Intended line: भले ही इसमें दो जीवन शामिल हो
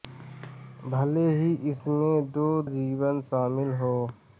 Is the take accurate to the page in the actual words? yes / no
yes